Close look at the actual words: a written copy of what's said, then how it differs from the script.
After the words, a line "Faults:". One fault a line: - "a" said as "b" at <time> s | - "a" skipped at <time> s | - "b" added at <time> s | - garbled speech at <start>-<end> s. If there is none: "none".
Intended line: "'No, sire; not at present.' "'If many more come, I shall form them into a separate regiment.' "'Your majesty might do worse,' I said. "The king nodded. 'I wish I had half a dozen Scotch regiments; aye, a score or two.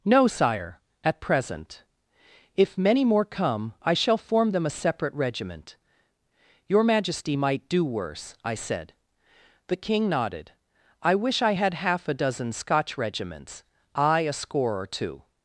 "'No, sire; at present.' "'If many more come, I shall form them a separate regiment.' "'Your majesty might do worse,' I said. "The king nodded. 'I wish I had half a dozen Scotch regiments; aye, a score or two.
Faults:
- "not" skipped at 0.8 s
- "into" skipped at 4.7 s